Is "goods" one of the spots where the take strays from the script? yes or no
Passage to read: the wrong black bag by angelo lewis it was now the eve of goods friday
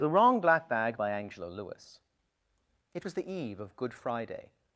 yes